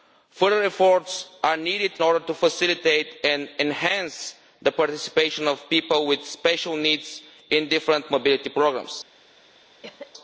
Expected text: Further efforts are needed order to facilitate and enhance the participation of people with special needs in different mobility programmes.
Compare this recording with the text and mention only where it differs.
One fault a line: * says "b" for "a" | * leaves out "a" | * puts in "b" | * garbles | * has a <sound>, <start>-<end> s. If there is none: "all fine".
* has a cough, 9.8-10.1 s